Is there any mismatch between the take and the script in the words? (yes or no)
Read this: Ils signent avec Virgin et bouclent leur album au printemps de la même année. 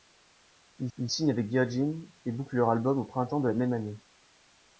yes